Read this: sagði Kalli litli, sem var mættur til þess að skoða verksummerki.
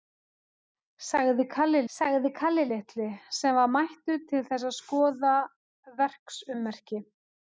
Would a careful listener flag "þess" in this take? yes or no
no